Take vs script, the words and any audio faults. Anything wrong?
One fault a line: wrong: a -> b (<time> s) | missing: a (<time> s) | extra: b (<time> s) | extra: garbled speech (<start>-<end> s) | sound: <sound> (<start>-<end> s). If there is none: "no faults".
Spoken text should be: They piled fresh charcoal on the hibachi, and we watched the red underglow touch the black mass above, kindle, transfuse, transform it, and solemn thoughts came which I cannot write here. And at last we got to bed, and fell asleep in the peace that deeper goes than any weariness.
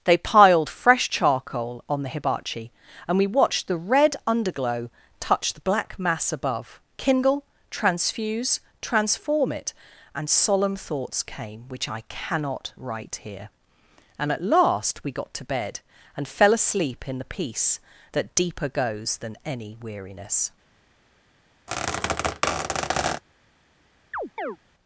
sound: squeak (21.7-23.2 s)
sound: chirp (24.1-24.6 s)